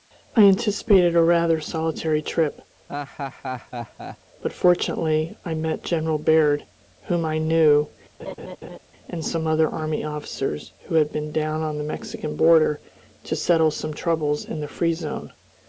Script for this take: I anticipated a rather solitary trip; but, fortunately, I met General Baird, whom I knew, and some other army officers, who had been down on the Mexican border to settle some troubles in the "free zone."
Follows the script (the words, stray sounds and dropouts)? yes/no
no